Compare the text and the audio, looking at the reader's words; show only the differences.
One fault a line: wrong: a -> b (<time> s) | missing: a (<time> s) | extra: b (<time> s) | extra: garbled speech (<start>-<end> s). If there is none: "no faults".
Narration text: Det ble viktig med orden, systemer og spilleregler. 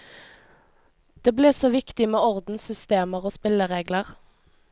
extra: så (1.5 s)